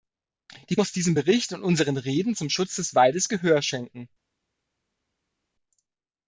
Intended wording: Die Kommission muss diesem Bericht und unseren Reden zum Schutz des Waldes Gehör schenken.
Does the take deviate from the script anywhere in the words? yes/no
yes